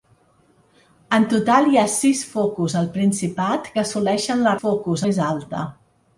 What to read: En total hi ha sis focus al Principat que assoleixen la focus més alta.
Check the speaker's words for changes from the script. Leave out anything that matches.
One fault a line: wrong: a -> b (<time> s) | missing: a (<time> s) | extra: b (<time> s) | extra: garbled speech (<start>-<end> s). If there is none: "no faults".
no faults